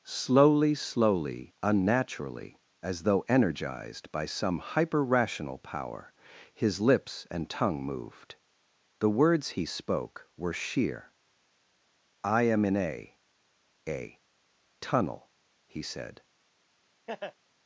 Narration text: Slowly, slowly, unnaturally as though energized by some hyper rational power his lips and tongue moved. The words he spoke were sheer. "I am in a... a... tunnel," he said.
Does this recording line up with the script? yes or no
yes